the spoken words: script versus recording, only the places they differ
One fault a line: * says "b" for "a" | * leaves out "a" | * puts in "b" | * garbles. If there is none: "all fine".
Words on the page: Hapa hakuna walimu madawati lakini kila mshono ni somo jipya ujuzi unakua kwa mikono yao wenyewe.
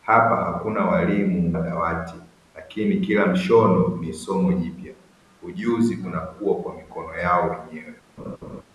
all fine